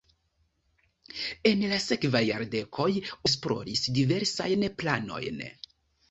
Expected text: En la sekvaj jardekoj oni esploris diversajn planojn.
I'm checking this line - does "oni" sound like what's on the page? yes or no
no